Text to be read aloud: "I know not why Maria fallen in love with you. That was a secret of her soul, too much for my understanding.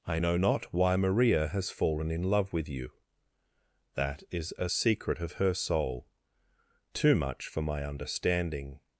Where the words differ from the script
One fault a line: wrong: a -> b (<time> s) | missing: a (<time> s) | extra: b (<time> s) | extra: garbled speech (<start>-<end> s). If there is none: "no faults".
extra: has (1.5 s)
wrong: was -> is (4.3 s)